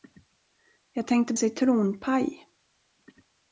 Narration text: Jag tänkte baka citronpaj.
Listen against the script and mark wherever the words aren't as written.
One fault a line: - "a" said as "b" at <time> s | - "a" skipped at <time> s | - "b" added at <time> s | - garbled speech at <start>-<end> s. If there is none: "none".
- "baka" skipped at 1.3 s